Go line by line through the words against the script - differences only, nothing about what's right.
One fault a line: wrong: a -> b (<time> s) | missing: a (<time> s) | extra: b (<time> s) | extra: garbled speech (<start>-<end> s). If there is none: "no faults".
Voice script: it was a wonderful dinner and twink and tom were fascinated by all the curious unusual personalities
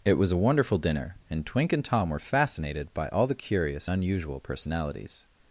no faults